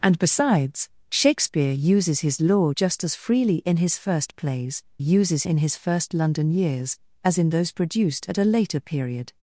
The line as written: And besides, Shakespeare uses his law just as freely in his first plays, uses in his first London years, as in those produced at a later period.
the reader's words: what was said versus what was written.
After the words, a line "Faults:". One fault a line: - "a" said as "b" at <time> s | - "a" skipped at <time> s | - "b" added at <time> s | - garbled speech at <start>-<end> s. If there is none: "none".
And besides, Shakespeare uses his law just as freely in his first plays, uses in his first London years, as in those produced at a later period.
Faults:
none